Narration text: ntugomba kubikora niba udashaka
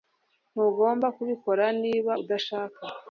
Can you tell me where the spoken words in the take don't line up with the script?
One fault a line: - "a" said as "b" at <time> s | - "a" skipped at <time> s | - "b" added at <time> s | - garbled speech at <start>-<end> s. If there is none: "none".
none